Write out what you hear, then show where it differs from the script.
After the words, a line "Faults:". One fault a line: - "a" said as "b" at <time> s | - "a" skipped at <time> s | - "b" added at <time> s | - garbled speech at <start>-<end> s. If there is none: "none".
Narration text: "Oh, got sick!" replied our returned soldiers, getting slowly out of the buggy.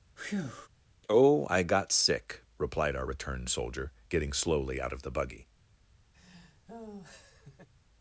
"Oh, I got sick!" replied our returned soldier, getting slowly out of the buggy.
Faults:
- "I" added at 1.5 s
- "soldiers" said as "soldier" at 3.5 s